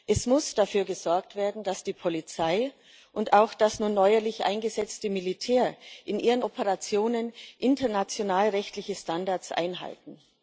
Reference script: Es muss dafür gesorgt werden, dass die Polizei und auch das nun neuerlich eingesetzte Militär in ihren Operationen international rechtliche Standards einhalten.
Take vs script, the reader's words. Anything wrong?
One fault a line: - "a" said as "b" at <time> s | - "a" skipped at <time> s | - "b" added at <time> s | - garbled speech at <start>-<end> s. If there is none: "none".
none